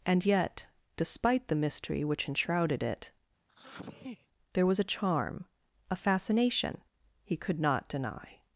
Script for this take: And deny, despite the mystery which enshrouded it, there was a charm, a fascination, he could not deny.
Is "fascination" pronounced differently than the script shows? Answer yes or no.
no